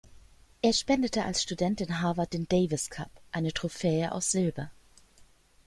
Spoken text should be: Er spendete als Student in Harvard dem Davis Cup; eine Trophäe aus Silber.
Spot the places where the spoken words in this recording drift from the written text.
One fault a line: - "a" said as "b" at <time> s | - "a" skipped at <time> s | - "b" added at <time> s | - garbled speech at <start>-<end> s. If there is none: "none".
- "dem" said as "den" at 2.3 s